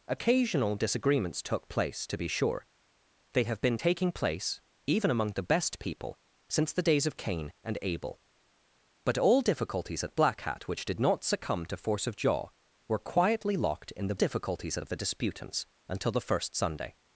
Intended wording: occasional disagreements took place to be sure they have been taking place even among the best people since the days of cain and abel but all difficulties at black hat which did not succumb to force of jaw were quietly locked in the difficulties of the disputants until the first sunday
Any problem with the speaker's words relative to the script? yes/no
no